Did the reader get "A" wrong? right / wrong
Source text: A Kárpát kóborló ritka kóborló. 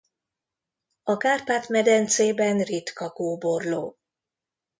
right